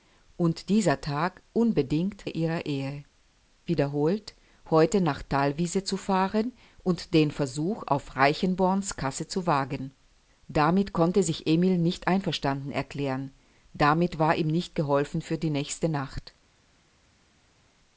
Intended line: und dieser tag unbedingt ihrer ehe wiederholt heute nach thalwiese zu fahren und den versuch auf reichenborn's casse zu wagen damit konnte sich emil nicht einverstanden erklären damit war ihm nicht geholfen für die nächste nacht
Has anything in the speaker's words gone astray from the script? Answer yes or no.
no